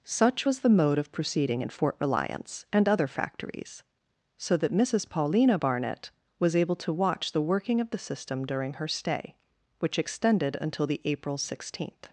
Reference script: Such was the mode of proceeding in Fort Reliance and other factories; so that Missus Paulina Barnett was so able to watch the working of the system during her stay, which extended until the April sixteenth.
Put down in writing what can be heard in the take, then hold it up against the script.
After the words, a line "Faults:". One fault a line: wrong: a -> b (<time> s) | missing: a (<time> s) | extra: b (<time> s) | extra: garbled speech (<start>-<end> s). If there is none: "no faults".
Such was the mode of proceeding in Fort Reliance and other factories; so that Missus Paulina Barnett was able to watch the working of the system during her stay, which extended until the April sixteenth.
Faults:
missing: so (6.6 s)